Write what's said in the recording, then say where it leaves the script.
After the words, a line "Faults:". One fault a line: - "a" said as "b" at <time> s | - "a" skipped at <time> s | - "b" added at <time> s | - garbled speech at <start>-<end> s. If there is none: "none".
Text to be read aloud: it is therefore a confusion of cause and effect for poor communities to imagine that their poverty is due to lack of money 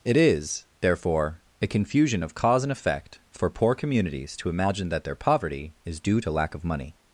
it is therefore a confusion of cause and effect for poor communities to imagine that their poverty is due to lack of money
Faults:
none